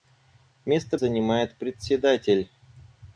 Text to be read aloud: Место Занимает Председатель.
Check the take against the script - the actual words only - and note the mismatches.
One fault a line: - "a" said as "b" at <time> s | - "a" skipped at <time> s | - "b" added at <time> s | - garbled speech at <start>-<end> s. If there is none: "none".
none